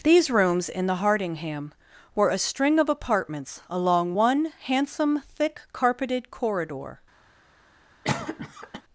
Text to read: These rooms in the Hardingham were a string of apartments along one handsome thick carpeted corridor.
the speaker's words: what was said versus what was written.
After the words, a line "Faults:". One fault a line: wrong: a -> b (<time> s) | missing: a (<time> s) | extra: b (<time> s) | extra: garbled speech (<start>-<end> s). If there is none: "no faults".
These rooms in the Hardingham were a string of apartments along one handsome thick carpeted corridor.
Faults:
no faults